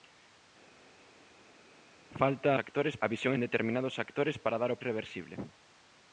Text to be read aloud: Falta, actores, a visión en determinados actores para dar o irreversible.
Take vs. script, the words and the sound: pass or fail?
pass